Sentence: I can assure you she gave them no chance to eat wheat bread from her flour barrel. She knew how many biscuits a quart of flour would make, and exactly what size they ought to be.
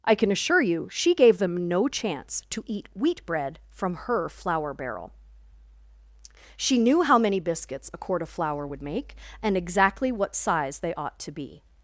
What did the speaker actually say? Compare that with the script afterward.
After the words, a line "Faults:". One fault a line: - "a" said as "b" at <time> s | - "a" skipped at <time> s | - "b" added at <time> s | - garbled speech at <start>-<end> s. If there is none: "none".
I can assure you she gave them no chance to eat wheat bread from her flour barrel. She knew how many biscuits a quart of flour would make, and exactly what size they ought to be.
Faults:
none